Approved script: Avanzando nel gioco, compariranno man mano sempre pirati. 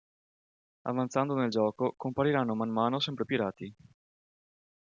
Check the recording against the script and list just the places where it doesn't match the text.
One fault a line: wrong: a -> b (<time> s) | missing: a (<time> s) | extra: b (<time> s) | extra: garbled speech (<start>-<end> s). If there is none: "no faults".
no faults